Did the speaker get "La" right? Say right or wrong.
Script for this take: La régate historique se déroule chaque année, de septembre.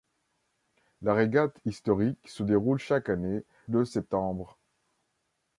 right